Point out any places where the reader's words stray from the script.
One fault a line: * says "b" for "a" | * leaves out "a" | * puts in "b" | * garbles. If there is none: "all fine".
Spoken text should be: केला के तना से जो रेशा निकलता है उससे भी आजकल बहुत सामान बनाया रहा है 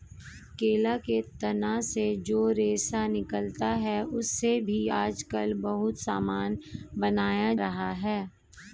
all fine